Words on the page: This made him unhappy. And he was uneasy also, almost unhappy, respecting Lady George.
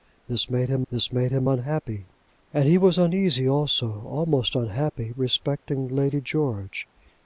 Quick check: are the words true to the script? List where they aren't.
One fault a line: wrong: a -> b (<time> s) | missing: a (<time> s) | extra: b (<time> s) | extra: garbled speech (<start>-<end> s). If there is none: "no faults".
extra: this made him (0.9 s)